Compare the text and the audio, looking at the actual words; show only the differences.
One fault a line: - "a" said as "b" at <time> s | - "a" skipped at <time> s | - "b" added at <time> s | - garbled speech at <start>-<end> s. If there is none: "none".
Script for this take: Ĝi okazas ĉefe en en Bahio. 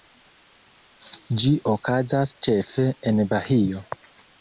- "en" skipped at 3.2 s